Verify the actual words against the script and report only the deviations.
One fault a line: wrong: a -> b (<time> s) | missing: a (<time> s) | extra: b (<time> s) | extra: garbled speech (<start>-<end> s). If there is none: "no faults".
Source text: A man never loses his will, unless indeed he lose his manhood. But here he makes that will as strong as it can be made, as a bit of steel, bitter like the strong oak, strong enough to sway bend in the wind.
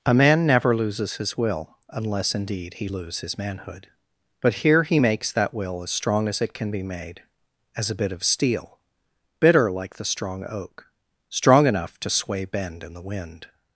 no faults